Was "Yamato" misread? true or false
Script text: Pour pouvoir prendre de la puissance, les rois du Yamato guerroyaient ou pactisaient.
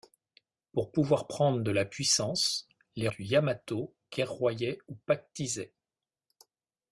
false